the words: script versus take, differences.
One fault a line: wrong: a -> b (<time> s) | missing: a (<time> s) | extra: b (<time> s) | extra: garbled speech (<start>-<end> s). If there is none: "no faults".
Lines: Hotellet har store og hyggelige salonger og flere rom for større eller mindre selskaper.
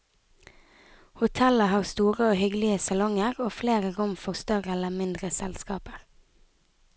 no faults